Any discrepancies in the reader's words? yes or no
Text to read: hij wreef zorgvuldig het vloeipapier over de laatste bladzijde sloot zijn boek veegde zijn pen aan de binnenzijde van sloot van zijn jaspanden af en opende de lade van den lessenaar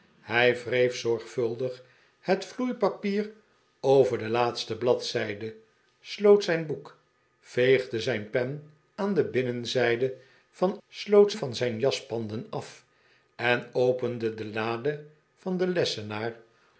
no